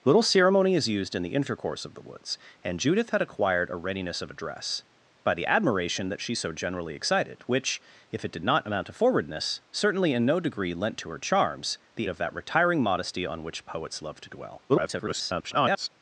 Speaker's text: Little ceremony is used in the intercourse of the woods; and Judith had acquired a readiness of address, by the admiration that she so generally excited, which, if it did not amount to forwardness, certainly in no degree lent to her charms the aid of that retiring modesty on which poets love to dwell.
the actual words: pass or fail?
fail